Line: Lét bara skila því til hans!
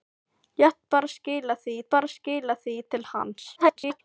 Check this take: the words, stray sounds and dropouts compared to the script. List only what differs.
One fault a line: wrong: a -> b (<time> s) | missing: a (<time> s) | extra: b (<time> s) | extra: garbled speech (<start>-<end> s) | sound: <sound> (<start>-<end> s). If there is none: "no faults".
extra: bara skila því (1.9 s)
extra: garbled speech (3.5-4.0 s)